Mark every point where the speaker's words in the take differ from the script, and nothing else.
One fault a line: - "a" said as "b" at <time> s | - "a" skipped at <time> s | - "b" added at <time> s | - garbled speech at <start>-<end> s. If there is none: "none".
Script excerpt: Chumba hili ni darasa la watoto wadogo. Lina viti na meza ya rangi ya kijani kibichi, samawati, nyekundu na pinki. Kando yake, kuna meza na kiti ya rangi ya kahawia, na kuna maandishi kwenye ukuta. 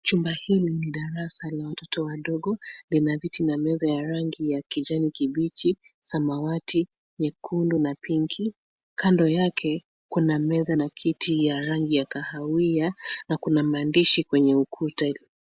none